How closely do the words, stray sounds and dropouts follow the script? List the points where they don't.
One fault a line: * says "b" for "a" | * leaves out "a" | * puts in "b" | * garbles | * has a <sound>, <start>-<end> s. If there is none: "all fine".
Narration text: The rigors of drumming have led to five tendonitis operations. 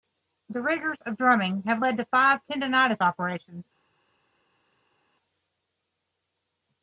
all fine